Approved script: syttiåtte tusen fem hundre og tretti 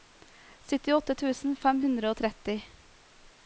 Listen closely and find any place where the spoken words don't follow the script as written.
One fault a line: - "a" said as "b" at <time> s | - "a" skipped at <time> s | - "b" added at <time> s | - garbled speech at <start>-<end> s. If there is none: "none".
none